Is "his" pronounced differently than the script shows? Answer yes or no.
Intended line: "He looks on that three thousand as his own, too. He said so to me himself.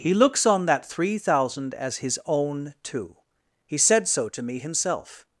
no